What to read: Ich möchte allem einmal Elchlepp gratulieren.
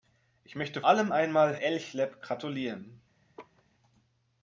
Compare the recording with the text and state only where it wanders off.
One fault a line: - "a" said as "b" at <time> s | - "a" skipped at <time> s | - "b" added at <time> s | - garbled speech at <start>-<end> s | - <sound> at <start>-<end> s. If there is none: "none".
- laugh at 3.4-3.6 s